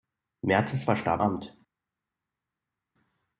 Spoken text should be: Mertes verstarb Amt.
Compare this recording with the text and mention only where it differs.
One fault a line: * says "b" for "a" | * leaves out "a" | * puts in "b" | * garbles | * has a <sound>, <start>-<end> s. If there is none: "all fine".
all fine